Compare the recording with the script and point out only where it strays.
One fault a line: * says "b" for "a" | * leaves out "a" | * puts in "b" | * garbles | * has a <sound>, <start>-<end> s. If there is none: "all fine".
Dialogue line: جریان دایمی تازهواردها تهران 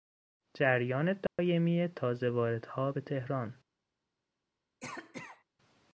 * has a dropout, 1.3-1.4 s
* puts in "به"
* has a cough, 4.8-5.4 s